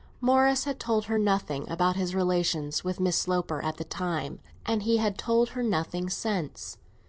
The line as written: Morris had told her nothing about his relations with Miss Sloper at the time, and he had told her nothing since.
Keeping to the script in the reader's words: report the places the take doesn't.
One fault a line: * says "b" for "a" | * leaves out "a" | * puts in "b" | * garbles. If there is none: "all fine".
all fine